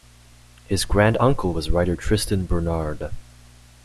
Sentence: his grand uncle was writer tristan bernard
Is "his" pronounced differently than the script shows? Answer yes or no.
no